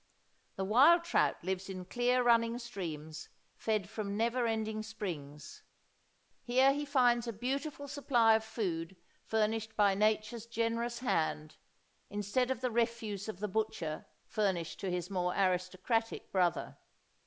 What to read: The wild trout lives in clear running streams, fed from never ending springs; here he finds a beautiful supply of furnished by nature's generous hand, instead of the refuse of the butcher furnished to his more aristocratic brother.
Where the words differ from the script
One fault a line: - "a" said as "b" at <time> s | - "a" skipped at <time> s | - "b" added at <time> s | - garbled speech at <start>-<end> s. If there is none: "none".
- "food" added at 8.4 s